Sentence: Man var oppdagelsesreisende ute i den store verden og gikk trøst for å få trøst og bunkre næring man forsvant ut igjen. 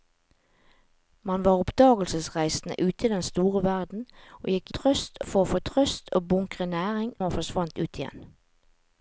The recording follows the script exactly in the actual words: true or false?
true